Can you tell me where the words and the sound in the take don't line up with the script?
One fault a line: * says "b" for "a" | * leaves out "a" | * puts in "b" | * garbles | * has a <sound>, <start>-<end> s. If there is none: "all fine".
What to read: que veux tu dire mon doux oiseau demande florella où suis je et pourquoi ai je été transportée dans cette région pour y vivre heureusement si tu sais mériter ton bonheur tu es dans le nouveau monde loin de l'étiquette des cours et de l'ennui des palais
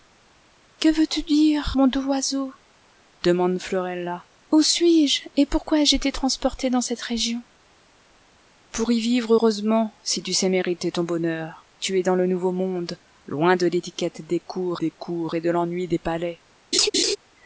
* puts in "des cours"
* has a laugh, 16.7-17.2 s